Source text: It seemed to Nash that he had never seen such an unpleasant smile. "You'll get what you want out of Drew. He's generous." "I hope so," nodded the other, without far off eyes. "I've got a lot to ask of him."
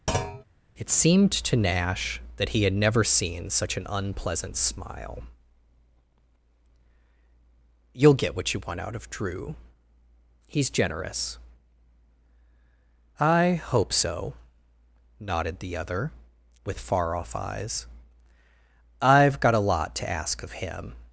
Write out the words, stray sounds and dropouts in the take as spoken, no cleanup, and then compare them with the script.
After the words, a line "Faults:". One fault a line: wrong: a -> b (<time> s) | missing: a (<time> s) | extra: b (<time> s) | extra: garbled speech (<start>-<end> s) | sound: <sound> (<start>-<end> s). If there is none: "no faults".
It seemed to Nash that he had never seen such an unpleasant smile. "You'll get what you want out of Drew. He's generous." "I hope so," nodded the other, with far off eyes. "I've got a lot to ask of him."
Faults:
sound: thud (0.1-0.4 s)
wrong: without -> with (16.7 s)